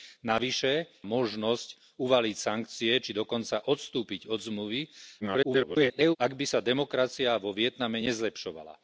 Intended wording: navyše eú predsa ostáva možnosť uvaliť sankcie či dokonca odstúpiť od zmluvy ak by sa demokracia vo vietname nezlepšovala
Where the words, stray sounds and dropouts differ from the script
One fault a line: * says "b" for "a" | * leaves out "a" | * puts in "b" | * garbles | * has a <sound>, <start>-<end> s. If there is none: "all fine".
* leaves out "eú predsa ostáva"
* garbles